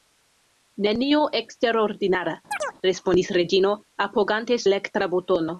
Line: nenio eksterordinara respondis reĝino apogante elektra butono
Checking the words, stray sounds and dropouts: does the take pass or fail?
fail